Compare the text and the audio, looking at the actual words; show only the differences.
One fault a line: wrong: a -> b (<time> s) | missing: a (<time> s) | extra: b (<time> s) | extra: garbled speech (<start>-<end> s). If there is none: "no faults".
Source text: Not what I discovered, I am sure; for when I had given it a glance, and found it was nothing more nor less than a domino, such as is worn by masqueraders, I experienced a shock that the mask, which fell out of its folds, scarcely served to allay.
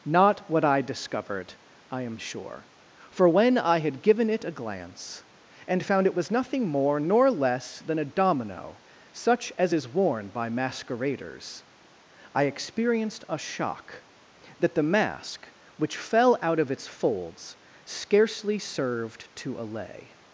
no faults